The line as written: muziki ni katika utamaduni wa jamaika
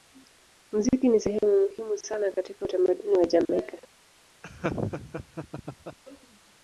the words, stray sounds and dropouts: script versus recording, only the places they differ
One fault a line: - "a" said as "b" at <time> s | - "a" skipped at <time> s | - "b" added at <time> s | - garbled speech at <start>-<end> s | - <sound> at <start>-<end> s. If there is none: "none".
- "sehemu muhimu sana" added at 1.2 s
- laugh at 4.4-6.0 s